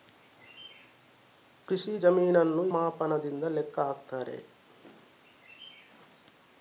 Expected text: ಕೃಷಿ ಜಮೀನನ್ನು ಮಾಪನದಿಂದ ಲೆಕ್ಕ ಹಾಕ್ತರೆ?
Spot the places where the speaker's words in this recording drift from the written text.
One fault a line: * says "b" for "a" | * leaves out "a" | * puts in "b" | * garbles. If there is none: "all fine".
all fine